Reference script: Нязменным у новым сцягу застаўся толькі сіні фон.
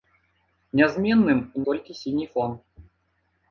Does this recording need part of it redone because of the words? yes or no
yes